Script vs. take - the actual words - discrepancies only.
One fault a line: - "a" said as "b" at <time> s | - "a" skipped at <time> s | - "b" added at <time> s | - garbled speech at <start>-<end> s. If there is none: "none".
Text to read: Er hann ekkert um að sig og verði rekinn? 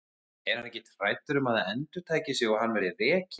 - "hræddur" added at 1.0 s
- "það endurtaki" added at 1.6 s
- "hann" added at 2.6 s